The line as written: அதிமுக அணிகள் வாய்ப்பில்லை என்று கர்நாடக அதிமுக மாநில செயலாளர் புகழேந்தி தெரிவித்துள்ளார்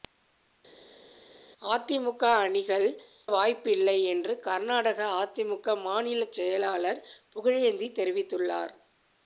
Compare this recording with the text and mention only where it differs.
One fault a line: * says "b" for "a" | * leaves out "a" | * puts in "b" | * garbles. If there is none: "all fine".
all fine